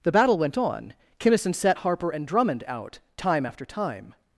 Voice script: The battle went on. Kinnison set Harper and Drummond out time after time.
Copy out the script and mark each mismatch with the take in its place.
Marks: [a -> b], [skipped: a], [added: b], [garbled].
The battle went on. Kinnison set Harper and Drummond out time after time.